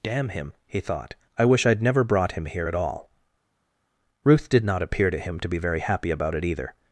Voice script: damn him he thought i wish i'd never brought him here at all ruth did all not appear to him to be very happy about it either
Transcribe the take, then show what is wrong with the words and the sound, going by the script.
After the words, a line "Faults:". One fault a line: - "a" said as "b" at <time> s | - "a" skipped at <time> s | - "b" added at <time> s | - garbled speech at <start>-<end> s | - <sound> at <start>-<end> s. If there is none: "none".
damn him he thought i wish i'd never brought him here at all ruth did not appear to him to be very happy about it either
Faults:
- "all" skipped at 4.6 s